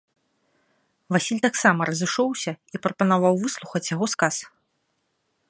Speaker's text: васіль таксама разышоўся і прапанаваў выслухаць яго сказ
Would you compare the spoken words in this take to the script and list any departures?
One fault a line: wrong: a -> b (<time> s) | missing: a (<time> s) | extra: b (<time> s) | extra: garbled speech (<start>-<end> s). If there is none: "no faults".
no faults